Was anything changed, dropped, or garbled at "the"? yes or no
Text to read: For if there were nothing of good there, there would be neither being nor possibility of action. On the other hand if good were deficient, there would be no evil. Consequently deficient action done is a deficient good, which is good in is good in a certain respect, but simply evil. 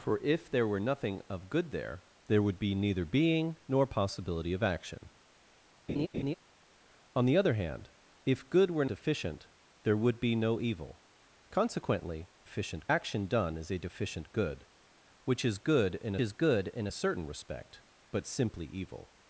no